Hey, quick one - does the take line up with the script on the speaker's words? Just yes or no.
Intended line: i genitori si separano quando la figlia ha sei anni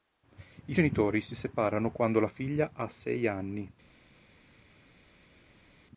yes